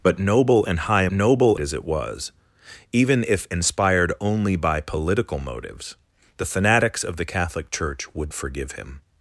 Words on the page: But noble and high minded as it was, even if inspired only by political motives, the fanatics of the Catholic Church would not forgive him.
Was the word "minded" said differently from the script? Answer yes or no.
yes